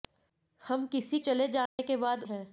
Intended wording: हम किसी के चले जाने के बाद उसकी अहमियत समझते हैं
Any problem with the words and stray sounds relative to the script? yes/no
yes